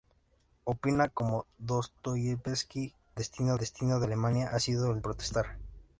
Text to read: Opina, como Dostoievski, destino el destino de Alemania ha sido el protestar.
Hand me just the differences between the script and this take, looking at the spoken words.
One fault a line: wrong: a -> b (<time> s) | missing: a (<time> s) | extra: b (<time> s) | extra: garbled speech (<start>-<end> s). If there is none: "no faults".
no faults